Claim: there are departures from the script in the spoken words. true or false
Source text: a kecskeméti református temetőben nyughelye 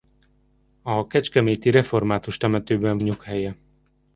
false